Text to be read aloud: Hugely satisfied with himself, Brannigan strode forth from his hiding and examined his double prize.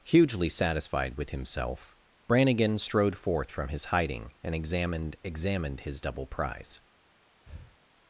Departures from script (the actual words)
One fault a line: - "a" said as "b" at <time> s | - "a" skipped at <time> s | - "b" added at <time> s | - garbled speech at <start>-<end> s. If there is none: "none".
- "examined" added at 5.2 s